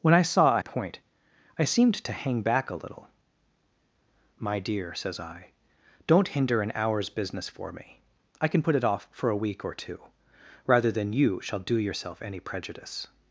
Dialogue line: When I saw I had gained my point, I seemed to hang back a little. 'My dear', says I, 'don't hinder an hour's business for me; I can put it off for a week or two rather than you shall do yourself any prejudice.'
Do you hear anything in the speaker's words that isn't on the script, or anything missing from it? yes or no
yes